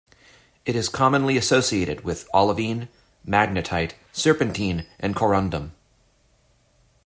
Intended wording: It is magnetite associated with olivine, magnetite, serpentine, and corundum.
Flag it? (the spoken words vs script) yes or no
yes